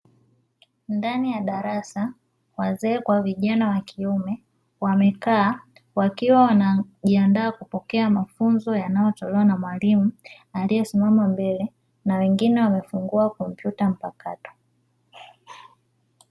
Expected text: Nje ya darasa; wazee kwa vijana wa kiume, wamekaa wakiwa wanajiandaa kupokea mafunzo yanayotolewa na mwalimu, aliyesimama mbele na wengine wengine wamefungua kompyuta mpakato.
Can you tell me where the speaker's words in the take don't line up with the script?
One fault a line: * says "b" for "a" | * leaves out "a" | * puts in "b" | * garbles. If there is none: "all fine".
* says "Ndani" for "Nje"
* leaves out "wengine"